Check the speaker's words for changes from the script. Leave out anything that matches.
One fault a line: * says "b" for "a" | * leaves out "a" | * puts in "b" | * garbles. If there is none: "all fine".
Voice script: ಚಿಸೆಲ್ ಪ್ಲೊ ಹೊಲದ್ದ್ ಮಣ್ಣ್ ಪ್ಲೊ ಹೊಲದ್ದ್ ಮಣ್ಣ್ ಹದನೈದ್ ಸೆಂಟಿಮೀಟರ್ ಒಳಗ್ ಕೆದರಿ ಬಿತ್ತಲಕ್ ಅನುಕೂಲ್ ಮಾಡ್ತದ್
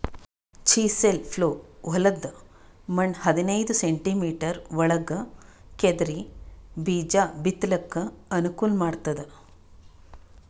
* leaves out "ಪ್ಲೊ ಹೊಲದ್ದ್ ಮಣ್ಣ್"
* puts in "ಬೀಜಾ"